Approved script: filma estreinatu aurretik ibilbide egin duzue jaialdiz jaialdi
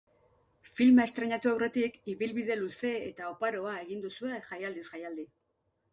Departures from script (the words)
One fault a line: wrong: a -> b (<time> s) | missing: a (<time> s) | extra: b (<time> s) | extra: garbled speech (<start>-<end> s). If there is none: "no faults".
extra: luze eta oparoa (2.6 s)